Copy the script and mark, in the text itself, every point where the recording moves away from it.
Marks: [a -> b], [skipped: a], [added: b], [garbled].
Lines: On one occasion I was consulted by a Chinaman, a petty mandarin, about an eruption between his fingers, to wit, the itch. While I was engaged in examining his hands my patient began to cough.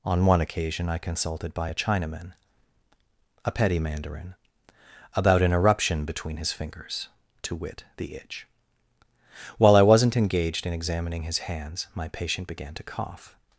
On one occasion I [skipped: was] consulted by a Chinaman, a petty mandarin, about an eruption between his fingers, to wit, the itch. While I [was -> wasn't] engaged in examining his hands my patient began to cough.